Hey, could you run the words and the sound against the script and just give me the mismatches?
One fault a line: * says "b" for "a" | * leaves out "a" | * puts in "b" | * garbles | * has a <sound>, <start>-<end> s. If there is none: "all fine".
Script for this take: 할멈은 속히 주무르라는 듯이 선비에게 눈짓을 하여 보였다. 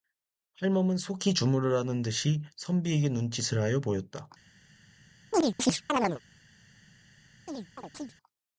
* has a chirp, 5.3-6.2 s
* has a chirp, 7.5-8.1 s